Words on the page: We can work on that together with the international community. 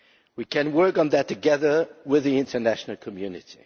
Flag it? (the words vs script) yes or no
no